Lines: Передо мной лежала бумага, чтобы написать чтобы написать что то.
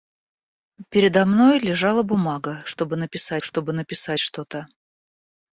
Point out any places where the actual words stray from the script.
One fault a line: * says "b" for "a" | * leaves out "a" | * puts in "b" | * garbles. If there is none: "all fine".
all fine